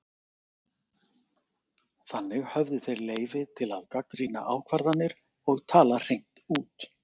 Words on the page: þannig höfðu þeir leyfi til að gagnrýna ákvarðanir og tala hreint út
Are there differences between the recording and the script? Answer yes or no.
no